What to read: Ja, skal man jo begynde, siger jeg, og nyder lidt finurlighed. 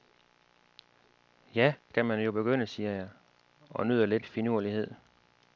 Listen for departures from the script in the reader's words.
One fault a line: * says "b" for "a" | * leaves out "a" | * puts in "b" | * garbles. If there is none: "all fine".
all fine